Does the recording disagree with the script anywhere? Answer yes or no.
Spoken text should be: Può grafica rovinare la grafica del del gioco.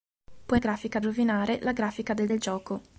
no